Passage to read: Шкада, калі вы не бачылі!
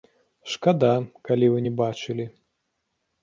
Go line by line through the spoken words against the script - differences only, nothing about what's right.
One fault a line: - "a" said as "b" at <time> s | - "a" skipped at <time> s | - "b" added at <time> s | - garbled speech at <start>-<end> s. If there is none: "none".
none